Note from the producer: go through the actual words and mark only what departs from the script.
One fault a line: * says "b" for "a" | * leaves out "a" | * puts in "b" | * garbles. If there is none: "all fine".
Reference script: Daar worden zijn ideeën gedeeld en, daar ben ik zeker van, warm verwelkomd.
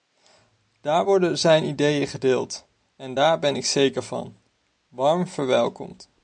all fine